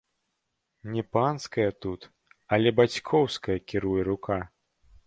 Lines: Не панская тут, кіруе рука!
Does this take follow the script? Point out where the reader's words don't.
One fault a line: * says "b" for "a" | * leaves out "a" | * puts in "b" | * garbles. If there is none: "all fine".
* puts in "але бацькоўская"